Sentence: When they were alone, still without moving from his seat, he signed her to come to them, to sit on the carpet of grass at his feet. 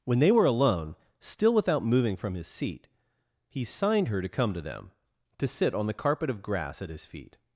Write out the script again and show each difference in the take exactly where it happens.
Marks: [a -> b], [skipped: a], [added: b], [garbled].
When they were alone, still without moving from his seat, he signed her to come to them, to sit on the carpet of grass at his feet.